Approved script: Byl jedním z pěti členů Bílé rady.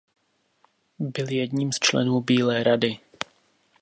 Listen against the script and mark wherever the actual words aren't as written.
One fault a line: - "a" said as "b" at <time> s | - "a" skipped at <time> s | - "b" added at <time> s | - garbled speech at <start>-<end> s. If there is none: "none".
- "pěti" skipped at 1.8 s